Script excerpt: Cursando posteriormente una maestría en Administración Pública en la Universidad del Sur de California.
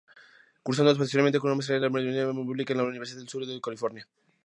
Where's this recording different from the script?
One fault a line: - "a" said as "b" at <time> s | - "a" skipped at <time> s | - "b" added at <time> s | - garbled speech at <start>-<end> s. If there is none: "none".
none